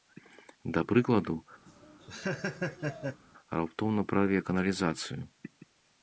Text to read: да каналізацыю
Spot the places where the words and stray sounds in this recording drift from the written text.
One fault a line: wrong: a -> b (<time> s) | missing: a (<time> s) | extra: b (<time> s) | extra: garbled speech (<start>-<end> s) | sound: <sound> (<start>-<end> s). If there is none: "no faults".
extra: прыкладу раптоўна прарве (0.9 s)
sound: laugh (1.7-3.2 s)